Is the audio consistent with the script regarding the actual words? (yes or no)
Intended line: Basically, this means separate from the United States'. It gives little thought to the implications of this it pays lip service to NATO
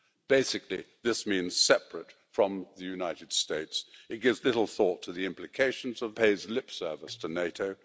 no